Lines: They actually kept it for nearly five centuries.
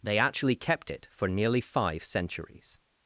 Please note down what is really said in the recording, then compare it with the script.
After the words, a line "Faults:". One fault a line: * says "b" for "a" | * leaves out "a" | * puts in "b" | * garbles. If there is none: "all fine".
They actually kept it for nearly five centuries.
Faults:
all fine